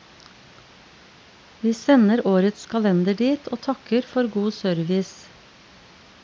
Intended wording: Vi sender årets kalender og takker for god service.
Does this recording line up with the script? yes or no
no